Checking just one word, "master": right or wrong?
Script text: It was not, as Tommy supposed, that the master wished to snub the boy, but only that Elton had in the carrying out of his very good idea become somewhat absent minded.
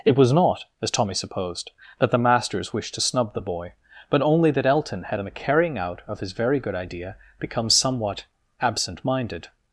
wrong